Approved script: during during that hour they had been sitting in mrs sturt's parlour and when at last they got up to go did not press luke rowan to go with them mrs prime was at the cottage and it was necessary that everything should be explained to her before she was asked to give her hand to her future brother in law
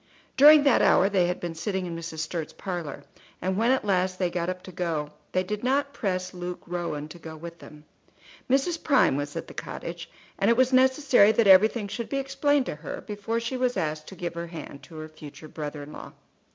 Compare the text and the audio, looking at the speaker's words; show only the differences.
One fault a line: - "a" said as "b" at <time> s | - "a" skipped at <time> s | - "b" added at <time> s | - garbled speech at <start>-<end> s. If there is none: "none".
- "during" skipped at 0.6 s
- "they" added at 5.3 s